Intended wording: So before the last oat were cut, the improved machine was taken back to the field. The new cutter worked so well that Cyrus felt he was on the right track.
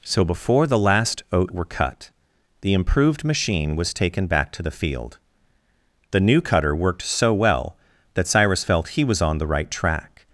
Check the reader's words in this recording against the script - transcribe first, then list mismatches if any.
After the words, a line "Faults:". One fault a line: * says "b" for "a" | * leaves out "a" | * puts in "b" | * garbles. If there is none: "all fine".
So before the last oat were cut, the improved machine was taken back to the field. The new cutter worked so well that Cyrus felt he was on the right track.
Faults:
all fine